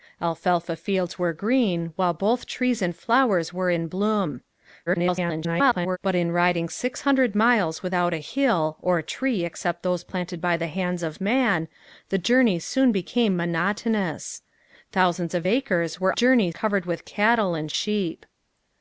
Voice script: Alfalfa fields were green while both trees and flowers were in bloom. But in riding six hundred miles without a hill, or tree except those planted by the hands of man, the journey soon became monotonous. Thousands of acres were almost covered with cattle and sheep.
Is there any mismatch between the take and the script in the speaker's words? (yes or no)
yes